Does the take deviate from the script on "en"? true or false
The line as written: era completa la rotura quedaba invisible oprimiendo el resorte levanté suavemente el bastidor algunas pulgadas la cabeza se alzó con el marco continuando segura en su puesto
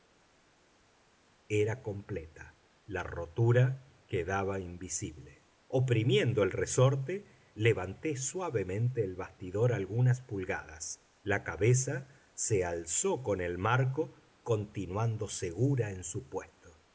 false